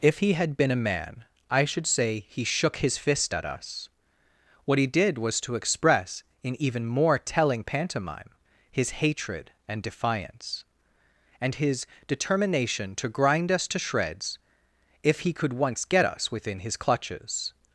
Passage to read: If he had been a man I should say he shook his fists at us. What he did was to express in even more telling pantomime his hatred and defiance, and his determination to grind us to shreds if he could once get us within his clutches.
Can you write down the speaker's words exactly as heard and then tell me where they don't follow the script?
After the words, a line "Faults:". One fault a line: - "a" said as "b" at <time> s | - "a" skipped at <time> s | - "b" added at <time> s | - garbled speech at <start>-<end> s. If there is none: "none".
If he had been a man I should say he shook his fist at us. What he did was to express in even more telling pantomime his hatred and defiance, and his determination to grind us to shreds if he could once get us within his clutches.
Faults:
- "fists" said as "fist" at 3.0 s